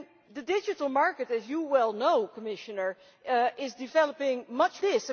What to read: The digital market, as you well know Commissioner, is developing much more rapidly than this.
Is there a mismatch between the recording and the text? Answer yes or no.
yes